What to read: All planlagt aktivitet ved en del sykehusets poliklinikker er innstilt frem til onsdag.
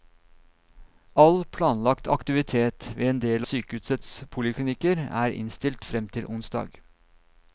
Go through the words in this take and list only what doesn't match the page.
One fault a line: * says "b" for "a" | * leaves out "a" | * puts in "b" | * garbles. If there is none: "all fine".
all fine